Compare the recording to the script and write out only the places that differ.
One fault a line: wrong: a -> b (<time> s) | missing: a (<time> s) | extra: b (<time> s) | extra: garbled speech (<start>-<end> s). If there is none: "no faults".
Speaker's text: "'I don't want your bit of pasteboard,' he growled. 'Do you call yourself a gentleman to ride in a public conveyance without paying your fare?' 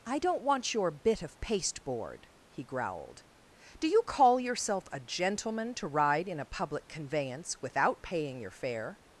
no faults